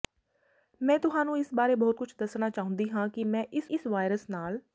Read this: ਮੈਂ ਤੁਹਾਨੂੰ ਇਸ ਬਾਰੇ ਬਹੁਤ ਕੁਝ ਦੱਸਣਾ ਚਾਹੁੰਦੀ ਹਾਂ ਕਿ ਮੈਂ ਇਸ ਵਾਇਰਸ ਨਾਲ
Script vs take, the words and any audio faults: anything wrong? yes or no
yes